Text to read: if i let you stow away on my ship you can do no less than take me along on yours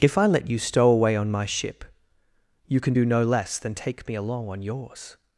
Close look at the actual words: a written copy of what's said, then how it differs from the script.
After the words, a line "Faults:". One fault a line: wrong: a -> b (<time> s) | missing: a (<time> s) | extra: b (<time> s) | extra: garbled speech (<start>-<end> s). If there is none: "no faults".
if i let you stow away on my ship you can do no less than take me along on yours
Faults:
no faults